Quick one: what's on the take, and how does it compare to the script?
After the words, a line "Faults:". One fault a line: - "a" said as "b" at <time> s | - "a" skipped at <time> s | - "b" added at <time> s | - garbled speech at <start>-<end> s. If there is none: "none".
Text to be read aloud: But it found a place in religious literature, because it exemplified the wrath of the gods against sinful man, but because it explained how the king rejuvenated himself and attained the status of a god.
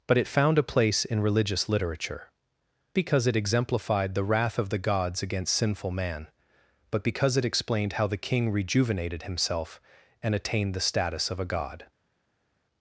But it found a place in religious literature, because it exemplified the wrath of the gods against sinful man, but because it explained how the king rejuvenated himself and attained the status of a god.
Faults:
none